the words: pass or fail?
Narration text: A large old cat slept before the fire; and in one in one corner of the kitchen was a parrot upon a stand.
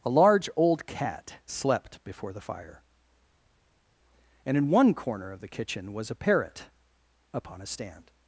fail